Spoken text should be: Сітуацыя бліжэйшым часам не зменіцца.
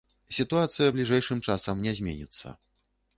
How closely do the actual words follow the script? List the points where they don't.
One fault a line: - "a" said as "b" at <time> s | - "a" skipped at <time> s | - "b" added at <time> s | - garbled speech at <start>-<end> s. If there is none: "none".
none